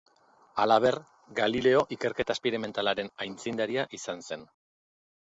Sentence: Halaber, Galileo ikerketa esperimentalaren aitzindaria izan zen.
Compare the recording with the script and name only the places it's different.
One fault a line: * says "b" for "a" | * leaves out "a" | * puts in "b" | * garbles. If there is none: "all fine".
all fine